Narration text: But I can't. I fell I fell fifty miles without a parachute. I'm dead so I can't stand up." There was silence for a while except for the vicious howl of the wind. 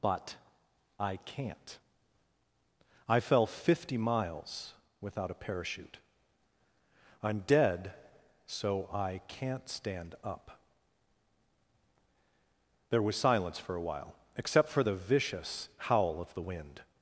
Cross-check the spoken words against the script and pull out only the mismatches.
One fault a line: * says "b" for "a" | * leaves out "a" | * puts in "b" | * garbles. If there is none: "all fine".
* leaves out "I fell"